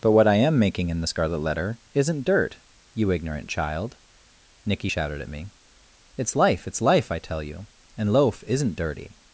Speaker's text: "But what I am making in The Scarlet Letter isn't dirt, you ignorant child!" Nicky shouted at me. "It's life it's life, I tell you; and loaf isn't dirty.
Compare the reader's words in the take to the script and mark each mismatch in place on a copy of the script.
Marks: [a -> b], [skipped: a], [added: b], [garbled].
"But what I am making in The Scarlet Letter isn't dirt, you ignorant child!" Nicky shouted at me. "It's life it's life, I tell you; and loaf isn't dirty.